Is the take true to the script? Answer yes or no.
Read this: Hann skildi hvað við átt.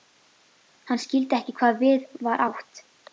no